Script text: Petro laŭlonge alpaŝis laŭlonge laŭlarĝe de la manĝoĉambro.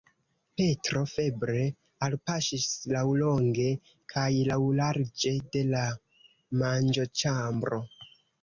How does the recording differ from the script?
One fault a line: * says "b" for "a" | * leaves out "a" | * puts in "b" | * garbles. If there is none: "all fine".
* says "febre" for "laŭlonge"
* puts in "kaj"